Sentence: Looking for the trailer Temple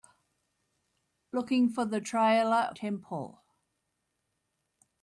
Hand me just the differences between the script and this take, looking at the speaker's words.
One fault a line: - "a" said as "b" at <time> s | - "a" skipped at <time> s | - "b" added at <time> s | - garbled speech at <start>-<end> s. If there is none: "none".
none